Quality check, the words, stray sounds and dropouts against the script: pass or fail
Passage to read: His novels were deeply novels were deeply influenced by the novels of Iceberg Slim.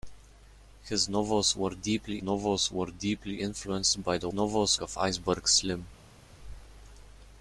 pass